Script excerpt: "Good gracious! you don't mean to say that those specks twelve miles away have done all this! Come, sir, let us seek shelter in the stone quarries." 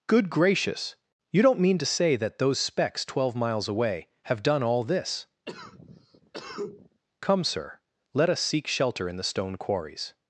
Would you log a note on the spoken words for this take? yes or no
no